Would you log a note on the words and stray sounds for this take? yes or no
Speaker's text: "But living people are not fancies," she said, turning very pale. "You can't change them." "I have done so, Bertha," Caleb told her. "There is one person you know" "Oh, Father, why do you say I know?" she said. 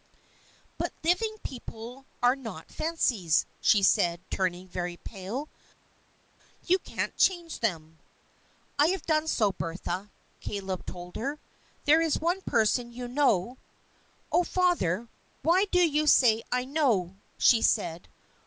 no